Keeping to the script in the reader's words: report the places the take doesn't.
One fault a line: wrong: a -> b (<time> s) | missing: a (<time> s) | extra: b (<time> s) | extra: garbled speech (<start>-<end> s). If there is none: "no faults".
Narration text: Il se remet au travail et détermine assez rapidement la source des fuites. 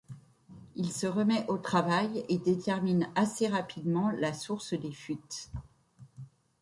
no faults